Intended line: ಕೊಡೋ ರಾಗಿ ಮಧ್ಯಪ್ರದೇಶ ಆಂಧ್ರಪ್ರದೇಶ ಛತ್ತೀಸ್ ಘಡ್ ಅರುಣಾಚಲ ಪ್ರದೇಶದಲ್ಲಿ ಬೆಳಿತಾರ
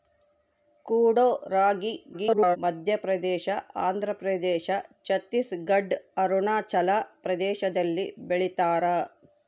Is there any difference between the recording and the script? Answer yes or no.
yes